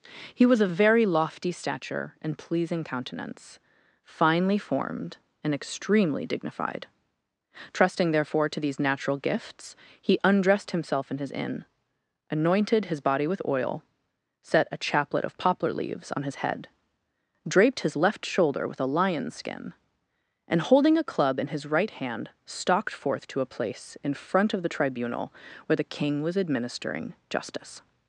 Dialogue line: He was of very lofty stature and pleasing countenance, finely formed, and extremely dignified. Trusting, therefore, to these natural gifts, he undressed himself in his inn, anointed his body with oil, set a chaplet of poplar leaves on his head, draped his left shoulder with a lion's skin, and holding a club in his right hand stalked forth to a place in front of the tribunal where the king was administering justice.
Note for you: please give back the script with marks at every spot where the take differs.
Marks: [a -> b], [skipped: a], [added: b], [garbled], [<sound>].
He was of very lofty stature and pleasing countenance, finely formed, and extremely dignified. Trusting, therefore, to these natural gifts, he undressed himself in his inn, anointed his body with oil, set a chaplet of poplar leaves on his head, draped his left shoulder with a lion's skin, and holding a club in his right hand stalked forth to a place in front of the tribunal where the king was administering justice.